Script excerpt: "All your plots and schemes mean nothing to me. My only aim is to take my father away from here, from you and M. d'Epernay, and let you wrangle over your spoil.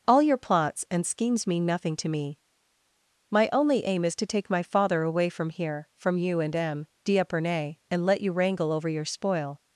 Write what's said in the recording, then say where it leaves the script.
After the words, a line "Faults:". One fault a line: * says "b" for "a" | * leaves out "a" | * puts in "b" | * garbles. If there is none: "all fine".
"All your plots and schemes mean nothing to me. My only aim is to take my father away from here, from you and M. d'Epernay, and let you wrangle over your spoil.
Faults:
all fine